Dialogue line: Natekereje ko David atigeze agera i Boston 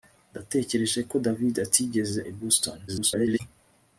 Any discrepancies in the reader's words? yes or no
yes